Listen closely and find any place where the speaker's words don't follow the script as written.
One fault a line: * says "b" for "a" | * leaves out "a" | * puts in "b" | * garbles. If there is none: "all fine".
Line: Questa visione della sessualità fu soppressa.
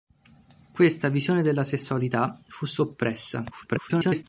* garbles